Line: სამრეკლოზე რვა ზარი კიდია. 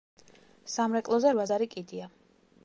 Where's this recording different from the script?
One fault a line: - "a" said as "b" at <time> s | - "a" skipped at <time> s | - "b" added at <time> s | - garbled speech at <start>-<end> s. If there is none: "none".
none